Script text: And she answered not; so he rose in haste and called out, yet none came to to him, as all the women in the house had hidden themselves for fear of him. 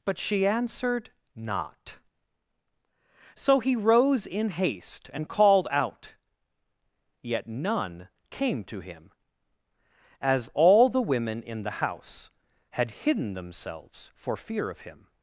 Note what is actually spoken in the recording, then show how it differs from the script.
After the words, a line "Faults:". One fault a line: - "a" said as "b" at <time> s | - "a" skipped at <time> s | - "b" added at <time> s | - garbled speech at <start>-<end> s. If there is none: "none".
But she answered not; so he rose in haste and called out, yet none came to him, as all the women in the house had hidden themselves for fear of him.
Faults:
- "And" said as "But" at 0.0 s
- "to" skipped at 8.8 s